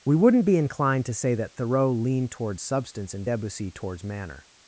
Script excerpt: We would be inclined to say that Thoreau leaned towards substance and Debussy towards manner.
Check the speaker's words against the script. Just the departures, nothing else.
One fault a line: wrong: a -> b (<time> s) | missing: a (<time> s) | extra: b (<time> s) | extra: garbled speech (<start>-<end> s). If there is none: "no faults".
wrong: would -> wouldn't (0.1 s)